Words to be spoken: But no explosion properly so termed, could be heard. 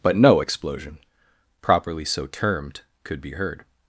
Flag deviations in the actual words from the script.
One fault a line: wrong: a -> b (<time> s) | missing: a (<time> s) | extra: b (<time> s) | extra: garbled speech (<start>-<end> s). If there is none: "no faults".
no faults